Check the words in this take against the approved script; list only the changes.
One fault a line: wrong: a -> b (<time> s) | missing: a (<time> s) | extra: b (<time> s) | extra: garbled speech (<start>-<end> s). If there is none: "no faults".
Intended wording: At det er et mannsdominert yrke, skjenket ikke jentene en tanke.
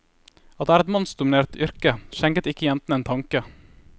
no faults